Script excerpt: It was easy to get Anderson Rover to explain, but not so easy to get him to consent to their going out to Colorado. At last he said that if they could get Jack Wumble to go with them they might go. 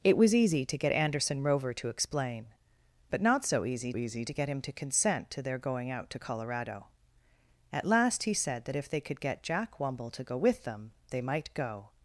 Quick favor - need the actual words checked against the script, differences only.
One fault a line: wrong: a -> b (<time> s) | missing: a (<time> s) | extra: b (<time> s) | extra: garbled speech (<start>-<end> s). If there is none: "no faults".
extra: easy (4.0 s)